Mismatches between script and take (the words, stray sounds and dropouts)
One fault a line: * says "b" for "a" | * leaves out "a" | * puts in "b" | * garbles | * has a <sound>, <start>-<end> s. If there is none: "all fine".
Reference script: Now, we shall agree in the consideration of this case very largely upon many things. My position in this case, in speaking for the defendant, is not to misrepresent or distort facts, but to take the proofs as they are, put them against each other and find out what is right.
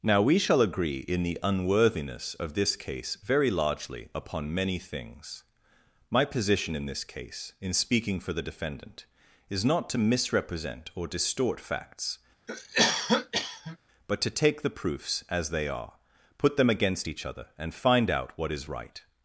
* says "unworthiness" for "consideration"
* has a cough, 12.5-13.8 s